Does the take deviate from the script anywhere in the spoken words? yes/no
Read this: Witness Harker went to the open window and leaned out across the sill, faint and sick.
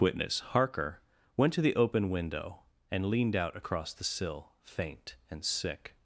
no